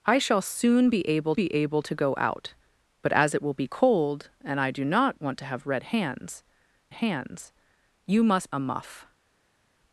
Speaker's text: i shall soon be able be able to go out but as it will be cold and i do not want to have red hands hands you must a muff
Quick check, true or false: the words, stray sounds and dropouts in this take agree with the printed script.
true